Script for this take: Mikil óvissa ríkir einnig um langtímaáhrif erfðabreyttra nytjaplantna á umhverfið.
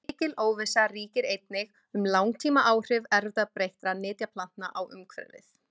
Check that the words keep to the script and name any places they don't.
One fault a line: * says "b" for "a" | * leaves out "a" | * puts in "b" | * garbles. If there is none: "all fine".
all fine